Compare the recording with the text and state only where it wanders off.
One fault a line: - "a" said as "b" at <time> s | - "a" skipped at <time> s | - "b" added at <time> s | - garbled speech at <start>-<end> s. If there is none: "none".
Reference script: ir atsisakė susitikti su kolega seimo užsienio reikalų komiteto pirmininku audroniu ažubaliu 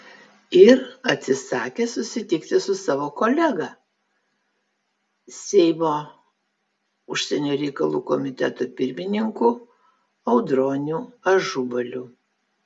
- "savo" added at 2.8 s